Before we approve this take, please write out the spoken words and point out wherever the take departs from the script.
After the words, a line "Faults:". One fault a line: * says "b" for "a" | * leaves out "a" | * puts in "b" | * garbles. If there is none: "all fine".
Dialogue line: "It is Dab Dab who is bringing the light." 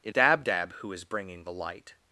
"It Dab Dab who is bringing the light."
Faults:
* leaves out "is"